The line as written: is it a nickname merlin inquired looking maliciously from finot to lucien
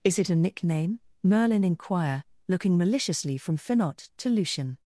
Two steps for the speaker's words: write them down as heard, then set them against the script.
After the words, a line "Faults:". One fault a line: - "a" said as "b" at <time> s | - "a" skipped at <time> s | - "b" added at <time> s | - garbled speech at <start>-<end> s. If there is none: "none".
is it a nickname merlin inquire looking maliciously from finot to lucien
Faults:
- "inquired" said as "inquire" at 1.6 s